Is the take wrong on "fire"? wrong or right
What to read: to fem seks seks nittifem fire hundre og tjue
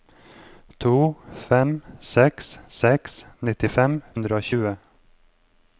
wrong